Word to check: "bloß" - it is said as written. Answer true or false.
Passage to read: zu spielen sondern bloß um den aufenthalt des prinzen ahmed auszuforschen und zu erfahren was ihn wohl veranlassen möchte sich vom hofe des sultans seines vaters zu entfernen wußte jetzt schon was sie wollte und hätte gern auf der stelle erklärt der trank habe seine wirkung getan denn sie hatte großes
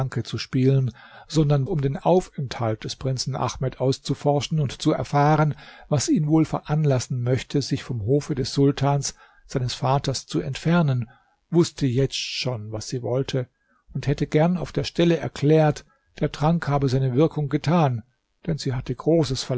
false